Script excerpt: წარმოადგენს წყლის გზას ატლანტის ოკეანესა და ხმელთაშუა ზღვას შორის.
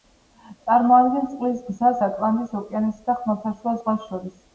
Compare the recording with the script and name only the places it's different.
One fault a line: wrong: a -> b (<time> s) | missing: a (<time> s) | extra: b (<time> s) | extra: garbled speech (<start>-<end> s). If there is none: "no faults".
no faults